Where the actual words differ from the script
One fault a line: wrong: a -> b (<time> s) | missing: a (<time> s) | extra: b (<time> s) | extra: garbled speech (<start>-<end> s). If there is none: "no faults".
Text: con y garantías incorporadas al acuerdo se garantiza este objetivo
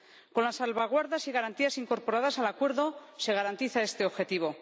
extra: las salvaguardas (0.5 s)